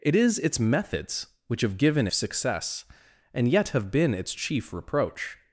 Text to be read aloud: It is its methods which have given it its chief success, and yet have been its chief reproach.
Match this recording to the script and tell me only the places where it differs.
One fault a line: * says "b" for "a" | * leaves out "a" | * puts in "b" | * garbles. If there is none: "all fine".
* leaves out "it its chief"